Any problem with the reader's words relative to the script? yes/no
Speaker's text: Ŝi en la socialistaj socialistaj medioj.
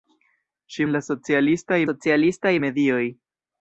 no